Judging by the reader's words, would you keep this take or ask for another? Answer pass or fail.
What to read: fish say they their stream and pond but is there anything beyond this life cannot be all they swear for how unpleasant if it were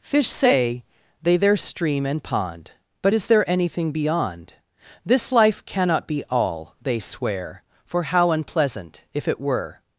pass